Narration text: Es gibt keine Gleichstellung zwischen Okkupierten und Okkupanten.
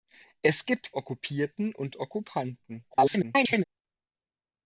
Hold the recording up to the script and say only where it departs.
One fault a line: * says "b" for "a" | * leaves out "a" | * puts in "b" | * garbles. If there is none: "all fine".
* leaves out "keine Gleichstellung zwischen"
* garbles